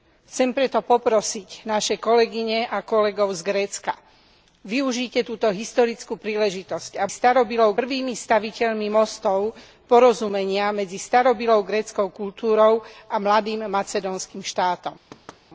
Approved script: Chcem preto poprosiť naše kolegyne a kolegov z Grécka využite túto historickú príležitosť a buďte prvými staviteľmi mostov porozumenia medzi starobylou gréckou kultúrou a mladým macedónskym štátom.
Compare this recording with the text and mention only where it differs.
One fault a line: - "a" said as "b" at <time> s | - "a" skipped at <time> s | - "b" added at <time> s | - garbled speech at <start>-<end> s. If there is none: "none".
- "buďte" said as "starobylou" at 7.1 s